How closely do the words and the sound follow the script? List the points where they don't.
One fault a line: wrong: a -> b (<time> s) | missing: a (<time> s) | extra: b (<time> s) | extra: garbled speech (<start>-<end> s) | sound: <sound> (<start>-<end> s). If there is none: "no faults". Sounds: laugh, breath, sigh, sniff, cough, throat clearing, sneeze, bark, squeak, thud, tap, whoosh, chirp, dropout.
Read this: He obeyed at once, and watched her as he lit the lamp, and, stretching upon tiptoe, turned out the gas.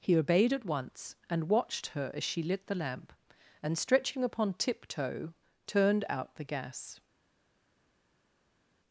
wrong: he -> she (2.2 s)